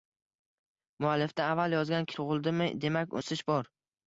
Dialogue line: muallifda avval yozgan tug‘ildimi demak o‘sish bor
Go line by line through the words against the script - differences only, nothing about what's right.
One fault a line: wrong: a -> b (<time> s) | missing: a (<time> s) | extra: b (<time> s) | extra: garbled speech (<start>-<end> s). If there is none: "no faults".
no faults